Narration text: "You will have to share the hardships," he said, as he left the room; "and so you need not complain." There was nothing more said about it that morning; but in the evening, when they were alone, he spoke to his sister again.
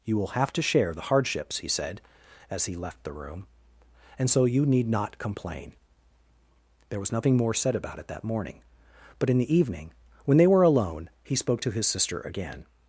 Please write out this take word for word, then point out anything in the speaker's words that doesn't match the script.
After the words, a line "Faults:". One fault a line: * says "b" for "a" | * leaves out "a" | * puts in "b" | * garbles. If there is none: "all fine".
"You will have to share the hardships," he said, as he left the room; "and so you need not complain." There was nothing more said about it that morning; but in the evening, when they were alone, he spoke to his sister again.
Faults:
all fine